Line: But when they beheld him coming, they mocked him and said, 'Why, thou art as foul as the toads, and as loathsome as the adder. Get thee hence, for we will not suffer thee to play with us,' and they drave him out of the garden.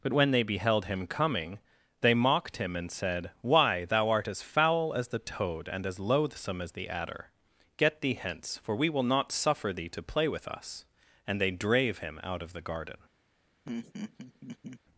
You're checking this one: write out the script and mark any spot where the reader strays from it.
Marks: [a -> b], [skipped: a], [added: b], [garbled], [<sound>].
But when they beheld him coming, they mocked him and said, 'Why, thou art as foul as the [toads, -> toad] and as loathsome as the adder. Get thee hence, for we will not suffer thee to play with us,' and they drave him out of the garden. [laugh]